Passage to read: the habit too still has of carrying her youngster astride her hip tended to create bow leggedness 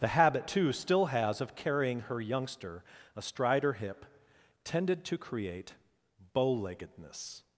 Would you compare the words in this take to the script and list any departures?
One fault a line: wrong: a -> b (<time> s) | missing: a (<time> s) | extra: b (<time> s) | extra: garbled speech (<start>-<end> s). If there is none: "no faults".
no faults